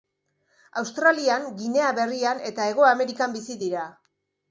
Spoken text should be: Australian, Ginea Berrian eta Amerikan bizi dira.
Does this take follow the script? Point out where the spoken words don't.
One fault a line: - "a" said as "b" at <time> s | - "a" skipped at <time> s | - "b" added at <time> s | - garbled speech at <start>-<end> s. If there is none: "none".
- "Hego" added at 2.7 s